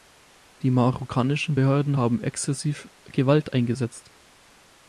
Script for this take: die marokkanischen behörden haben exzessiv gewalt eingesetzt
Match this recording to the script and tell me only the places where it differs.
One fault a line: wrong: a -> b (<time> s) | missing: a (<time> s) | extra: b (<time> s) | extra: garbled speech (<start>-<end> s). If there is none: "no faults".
no faults